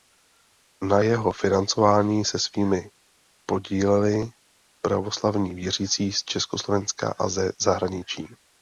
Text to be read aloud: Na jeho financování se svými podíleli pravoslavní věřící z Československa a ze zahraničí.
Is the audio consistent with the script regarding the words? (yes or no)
yes